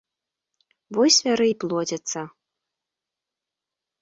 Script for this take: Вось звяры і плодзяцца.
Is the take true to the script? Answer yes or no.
yes